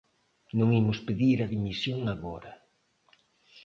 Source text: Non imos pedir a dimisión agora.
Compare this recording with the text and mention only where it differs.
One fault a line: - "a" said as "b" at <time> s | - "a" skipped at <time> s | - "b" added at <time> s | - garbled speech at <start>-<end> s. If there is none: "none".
none